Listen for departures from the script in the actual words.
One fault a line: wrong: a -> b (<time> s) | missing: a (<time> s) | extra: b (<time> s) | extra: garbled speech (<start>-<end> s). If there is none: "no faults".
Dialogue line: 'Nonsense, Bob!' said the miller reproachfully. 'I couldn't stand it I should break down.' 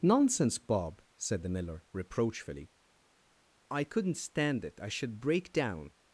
no faults